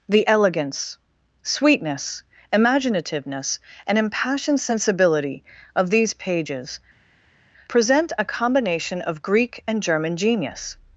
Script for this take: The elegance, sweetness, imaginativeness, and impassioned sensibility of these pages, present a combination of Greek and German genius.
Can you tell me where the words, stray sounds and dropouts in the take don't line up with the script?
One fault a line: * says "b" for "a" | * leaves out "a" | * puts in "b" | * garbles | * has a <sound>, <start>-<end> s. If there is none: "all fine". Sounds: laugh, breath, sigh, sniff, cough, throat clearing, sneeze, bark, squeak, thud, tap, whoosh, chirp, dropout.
all fine